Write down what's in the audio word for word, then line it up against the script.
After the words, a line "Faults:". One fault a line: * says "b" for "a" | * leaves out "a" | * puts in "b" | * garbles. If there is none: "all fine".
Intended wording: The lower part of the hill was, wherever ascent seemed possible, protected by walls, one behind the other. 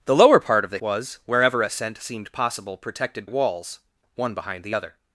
The lower part of the was, wherever ascent seemed possible, protected walls, one behind the other.
Faults:
* leaves out "hill"
* leaves out "by"